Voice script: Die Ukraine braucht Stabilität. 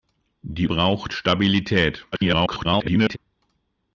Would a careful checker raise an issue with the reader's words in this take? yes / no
yes